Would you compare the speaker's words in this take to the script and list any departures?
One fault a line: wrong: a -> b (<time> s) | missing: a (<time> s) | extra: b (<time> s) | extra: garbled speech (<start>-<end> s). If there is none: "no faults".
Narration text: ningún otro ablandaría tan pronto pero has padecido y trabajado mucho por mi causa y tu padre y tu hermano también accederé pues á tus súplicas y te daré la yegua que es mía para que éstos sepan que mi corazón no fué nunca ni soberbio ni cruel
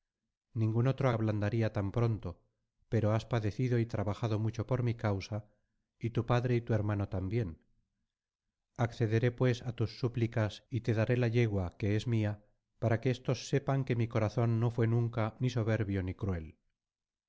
no faults